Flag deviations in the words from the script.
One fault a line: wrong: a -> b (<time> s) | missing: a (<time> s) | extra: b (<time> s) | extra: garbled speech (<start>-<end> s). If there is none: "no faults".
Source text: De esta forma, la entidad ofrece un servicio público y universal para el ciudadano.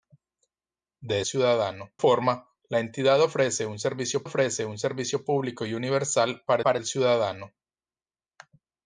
wrong: esta -> ciudadano (1.2 s)
extra: ofrece un servicio (4.2 s)
extra: para (6.6 s)